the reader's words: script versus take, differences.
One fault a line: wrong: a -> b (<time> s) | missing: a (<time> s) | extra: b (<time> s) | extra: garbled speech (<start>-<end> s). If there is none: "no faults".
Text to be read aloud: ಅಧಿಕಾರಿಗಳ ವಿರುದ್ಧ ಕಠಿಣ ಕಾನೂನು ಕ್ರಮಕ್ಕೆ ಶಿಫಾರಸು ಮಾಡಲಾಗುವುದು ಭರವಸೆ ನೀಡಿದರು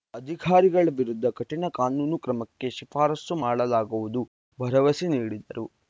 no faults